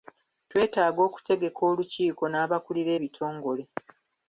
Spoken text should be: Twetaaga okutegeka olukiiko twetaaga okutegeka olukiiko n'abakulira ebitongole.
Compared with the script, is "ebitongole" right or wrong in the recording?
right